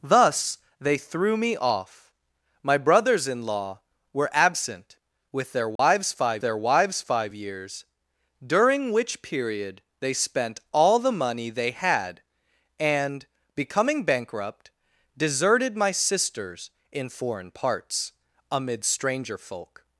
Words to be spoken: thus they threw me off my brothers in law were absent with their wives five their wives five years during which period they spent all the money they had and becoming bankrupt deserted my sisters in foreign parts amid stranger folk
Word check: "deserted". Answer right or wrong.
right